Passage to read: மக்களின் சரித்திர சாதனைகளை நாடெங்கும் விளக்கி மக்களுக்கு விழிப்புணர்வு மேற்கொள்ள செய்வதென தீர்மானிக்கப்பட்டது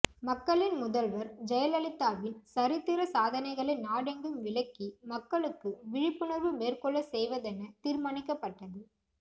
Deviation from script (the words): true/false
true